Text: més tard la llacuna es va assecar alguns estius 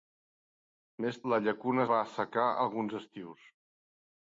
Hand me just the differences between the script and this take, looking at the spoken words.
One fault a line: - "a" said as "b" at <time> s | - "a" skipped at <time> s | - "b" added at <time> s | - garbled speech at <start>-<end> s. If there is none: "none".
- "tard" skipped at 1.2 s
- "es" skipped at 1.8 s